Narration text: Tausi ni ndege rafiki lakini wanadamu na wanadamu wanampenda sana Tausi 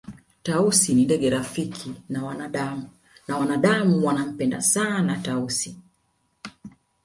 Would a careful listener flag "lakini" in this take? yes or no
yes